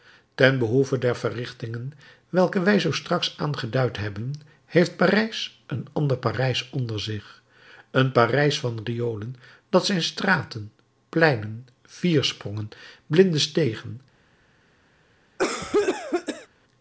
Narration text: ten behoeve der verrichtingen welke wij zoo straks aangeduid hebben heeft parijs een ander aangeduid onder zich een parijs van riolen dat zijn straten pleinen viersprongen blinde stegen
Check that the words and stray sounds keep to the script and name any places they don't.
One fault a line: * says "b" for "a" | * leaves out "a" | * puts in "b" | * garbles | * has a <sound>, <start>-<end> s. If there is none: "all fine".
* says "parijs" for "aangeduid"
* has a cough, 15.4-16.5 s